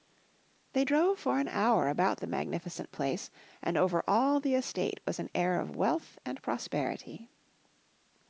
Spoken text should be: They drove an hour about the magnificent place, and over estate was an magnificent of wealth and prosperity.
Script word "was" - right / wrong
right